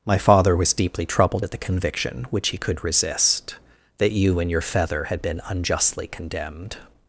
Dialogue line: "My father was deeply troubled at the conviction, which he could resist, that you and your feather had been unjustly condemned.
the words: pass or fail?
pass